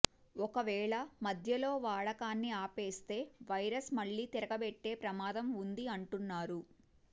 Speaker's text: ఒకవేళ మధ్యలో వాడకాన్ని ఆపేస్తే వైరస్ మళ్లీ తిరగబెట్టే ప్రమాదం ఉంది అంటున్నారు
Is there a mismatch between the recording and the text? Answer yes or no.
no